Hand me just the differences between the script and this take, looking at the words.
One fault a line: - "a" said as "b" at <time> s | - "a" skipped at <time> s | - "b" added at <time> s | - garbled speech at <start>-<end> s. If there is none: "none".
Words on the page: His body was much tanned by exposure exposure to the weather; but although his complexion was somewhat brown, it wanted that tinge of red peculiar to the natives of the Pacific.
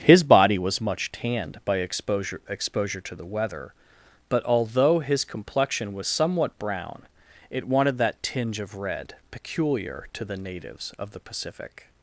none